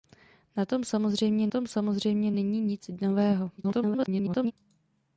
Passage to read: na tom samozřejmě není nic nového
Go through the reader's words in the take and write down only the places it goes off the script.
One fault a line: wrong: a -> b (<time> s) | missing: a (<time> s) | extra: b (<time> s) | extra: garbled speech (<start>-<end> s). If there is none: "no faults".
extra: tom samozřejmě (1.5 s)
extra: garbled speech (3.6-4.5 s)